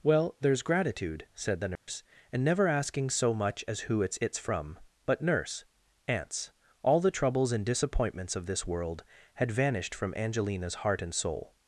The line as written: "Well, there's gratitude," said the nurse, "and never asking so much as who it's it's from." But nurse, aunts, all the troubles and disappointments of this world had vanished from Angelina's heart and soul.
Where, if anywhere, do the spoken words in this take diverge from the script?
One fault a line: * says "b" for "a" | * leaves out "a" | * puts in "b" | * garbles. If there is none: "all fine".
all fine